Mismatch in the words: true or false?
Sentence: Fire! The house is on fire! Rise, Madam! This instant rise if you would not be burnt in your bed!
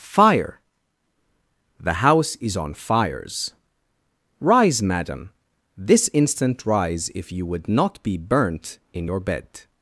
true